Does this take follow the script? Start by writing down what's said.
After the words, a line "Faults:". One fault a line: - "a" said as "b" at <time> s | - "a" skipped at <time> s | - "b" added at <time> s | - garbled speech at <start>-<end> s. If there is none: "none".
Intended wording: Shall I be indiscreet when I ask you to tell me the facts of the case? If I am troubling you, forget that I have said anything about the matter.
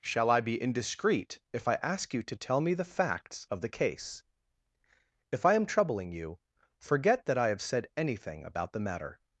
Shall I be indiscreet if I ask you to tell me the facts of the case? If I am troubling you, forget that I have said anything about the matter.
Faults:
- "when" said as "if" at 1.5 s